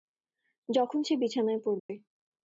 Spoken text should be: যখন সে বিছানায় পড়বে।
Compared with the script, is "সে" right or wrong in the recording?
right